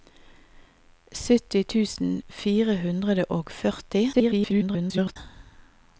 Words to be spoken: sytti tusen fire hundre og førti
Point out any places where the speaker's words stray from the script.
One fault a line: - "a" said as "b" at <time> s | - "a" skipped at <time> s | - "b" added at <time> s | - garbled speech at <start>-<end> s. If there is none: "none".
- garbled speech at 4.1-5.2 s